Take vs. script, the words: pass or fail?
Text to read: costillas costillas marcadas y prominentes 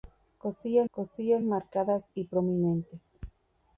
pass